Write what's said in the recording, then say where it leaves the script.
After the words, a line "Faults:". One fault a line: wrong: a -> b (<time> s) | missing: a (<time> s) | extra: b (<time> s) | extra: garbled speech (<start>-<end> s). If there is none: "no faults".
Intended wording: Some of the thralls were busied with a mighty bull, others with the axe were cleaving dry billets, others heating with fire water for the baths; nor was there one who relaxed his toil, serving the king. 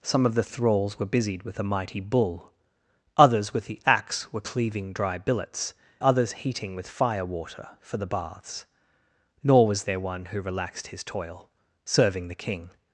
Some of the thralls were busied with a mighty bull, others with the axe were cleaving dry billets, others heating with fire water for the baths; nor was there one who relaxed his toil, serving the king.
Faults:
no faults